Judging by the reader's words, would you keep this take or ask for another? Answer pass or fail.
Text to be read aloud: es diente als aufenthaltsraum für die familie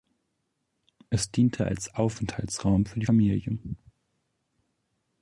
pass